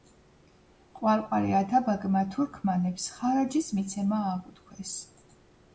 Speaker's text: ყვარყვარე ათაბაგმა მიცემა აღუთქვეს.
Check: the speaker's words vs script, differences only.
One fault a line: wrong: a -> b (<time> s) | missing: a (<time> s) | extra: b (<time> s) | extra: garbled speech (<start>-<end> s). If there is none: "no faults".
extra: თურქმანებს ხარაჯის (2.4 s)